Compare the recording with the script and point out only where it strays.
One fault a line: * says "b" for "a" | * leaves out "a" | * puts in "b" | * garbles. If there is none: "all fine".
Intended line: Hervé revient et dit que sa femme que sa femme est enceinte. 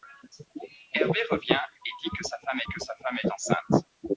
all fine